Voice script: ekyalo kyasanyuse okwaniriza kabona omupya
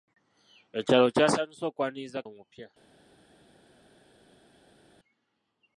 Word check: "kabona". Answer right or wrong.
wrong